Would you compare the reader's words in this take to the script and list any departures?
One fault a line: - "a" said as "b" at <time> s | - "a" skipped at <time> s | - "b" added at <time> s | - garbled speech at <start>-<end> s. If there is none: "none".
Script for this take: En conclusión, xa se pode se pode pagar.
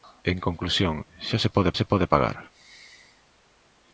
none